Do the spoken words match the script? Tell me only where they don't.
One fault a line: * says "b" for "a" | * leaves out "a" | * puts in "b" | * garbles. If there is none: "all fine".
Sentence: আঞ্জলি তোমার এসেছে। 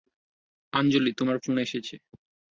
* puts in "ফোন"